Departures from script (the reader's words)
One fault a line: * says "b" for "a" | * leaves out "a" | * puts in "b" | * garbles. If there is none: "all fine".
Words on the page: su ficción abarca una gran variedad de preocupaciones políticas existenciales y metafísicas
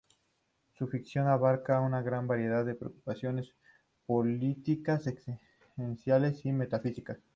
all fine